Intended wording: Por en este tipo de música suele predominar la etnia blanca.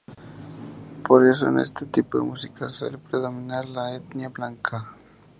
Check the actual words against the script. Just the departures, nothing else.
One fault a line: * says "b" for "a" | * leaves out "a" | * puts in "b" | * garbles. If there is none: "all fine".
* puts in "eso"